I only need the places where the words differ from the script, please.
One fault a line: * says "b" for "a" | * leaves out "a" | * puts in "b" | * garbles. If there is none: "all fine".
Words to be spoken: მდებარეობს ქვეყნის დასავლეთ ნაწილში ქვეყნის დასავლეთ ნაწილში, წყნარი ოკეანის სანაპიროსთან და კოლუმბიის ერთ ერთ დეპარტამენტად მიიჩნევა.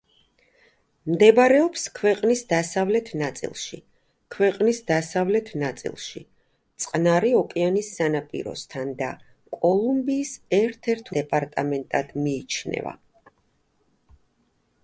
all fine